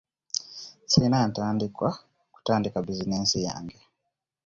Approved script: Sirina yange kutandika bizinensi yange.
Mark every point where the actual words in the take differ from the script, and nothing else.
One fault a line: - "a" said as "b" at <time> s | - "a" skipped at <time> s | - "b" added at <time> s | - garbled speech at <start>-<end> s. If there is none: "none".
- "yange" said as "ntandikwa" at 1.3 s